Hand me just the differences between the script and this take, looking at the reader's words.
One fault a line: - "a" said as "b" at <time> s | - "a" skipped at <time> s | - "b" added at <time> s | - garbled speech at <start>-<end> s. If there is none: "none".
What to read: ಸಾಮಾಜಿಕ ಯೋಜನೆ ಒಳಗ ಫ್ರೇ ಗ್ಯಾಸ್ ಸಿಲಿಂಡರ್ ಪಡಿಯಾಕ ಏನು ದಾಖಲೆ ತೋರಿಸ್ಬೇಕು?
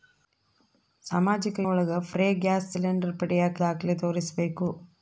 - "ಯೋಜನೆ" skipped at 1.6 s
- "ಏನು" skipped at 3.6 s